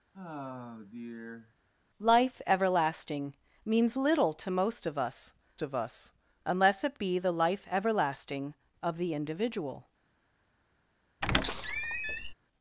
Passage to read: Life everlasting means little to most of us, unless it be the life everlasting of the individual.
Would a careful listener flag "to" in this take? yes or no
no